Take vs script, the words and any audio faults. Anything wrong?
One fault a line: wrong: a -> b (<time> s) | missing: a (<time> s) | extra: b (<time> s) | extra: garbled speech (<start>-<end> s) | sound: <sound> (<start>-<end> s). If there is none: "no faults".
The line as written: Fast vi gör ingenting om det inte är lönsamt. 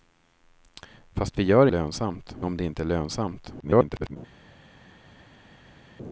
wrong: ingenting -> lönsamt (1.7 s)
extra: garbled speech (3.6-4.2 s)